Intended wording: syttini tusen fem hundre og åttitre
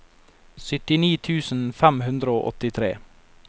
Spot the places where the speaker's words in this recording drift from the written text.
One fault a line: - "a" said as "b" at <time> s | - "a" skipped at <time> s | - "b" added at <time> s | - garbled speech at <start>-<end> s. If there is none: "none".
none